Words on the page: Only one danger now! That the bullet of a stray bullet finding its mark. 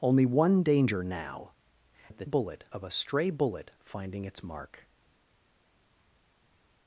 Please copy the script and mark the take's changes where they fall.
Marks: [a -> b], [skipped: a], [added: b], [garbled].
Only one danger now! That the bullet of a stray bullet finding its mark.